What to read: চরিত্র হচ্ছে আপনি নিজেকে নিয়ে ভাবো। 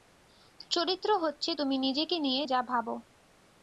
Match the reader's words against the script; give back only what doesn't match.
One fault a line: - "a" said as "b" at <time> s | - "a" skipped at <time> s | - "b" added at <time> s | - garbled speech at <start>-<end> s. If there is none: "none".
- "আপনি" said as "তুমি" at 1.5 s
- "যা" added at 2.4 s